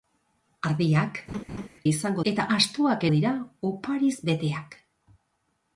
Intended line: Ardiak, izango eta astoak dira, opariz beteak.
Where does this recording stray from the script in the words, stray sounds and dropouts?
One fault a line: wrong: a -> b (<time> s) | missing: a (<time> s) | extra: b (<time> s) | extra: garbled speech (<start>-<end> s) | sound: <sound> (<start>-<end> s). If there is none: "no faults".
sound: laugh (1.3-1.7 s)